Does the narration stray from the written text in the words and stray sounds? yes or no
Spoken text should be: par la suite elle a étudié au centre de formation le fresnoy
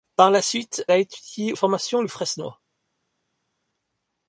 yes